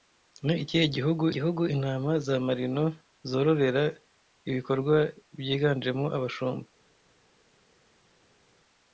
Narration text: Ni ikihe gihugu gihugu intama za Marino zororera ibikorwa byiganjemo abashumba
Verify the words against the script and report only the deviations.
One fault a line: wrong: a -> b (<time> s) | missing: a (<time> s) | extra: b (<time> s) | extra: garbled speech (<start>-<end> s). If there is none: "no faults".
no faults